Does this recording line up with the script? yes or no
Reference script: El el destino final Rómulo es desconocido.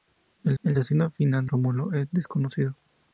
yes